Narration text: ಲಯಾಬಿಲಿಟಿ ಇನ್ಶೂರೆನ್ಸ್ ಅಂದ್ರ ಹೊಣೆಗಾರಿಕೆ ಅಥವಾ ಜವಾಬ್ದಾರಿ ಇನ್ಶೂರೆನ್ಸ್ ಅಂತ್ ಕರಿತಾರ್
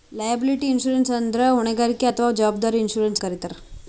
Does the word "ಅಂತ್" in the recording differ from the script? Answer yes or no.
yes